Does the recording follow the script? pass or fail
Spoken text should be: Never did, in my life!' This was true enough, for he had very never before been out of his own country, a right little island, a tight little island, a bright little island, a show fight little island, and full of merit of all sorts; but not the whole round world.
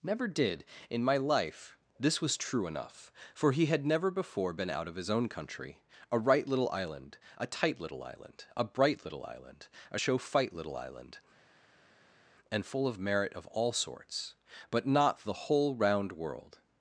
fail